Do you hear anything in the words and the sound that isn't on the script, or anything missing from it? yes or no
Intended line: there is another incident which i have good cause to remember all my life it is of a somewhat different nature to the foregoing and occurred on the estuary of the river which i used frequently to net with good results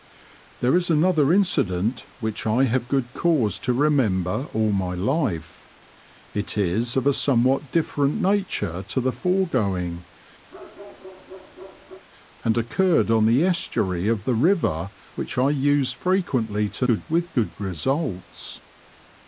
yes